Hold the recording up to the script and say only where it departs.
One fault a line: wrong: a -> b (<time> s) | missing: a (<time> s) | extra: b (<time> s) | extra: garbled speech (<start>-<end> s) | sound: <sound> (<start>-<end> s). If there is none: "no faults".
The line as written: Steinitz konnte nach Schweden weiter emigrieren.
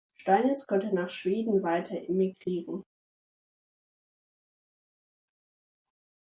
no faults